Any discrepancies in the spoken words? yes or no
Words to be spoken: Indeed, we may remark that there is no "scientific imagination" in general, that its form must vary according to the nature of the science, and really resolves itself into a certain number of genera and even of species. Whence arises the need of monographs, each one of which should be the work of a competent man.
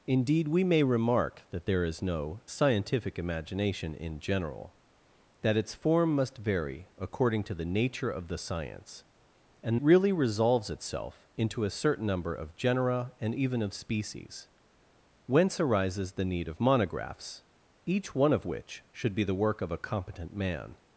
no